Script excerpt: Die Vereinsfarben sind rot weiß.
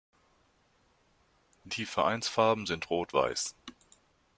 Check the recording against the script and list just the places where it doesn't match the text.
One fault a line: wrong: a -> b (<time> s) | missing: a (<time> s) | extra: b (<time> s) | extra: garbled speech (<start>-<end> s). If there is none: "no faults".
no faults